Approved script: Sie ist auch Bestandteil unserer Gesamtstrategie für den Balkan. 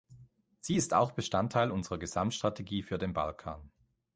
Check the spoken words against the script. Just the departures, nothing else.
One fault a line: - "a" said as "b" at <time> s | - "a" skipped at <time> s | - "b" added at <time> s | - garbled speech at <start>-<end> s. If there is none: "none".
none